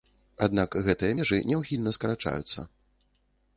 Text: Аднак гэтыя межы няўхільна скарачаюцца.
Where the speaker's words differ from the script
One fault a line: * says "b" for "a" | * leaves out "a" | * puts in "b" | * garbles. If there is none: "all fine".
all fine